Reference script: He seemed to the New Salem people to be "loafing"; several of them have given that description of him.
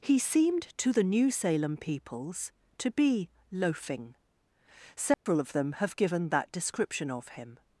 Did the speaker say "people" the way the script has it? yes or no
no